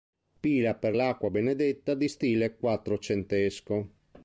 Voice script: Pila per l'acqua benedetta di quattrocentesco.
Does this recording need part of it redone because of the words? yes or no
yes